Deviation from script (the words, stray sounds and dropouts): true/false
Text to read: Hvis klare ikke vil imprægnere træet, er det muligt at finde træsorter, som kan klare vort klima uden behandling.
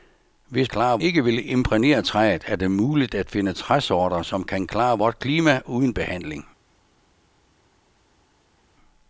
false